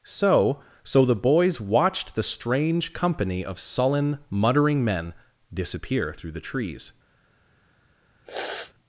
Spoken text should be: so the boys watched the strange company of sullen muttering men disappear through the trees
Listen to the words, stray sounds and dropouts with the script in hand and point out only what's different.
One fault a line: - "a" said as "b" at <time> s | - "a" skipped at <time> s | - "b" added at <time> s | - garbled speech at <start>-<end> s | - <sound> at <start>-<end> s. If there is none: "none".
- "so" added at 0.8 s
- sniff at 8.3-8.7 s